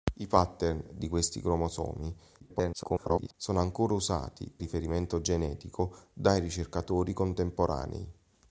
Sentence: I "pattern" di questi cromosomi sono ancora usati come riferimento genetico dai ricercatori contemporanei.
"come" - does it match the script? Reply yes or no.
no